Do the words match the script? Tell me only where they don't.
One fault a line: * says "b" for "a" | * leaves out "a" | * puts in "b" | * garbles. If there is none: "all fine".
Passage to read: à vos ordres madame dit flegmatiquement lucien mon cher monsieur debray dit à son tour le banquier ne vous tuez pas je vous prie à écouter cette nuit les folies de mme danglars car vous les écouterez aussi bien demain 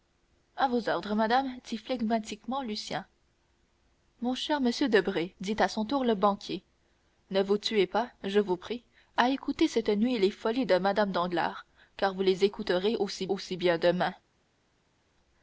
* puts in "aussi"